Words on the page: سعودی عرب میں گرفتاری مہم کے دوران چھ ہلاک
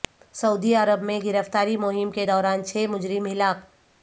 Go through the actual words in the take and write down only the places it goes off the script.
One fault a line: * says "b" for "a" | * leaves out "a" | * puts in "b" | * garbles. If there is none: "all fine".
* puts in "مجرم"